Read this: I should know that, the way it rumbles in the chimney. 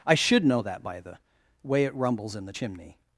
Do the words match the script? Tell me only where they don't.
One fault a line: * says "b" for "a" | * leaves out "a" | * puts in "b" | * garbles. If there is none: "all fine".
* puts in "by"